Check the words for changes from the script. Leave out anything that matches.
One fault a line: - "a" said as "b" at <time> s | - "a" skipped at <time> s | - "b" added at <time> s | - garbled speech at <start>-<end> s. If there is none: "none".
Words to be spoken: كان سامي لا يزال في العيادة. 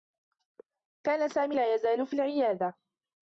none